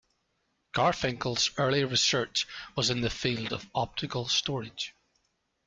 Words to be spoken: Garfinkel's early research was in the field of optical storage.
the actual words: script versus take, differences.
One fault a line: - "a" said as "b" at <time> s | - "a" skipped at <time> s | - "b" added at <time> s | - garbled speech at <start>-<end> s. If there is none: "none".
none